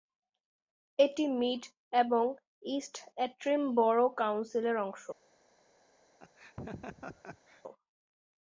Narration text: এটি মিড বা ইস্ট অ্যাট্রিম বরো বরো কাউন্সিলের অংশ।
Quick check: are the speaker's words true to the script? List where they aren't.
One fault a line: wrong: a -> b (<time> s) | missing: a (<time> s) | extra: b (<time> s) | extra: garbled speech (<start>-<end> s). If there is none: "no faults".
wrong: বা -> এবং (1.9 s)
missing: বরো (4.1 s)